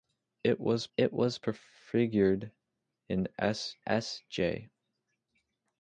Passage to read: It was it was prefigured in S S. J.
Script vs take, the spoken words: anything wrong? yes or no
no